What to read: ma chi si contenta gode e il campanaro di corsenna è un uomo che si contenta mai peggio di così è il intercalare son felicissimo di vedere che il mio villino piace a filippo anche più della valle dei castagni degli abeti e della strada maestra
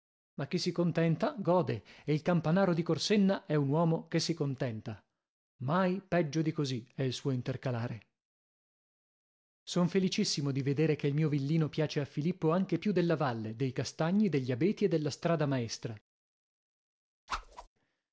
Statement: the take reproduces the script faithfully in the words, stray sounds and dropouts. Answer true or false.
false